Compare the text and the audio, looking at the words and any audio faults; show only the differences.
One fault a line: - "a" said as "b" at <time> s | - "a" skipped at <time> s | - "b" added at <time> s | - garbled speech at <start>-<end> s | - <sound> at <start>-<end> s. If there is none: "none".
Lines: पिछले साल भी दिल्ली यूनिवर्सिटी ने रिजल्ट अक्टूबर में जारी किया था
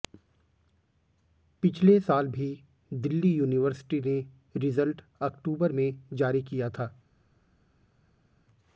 none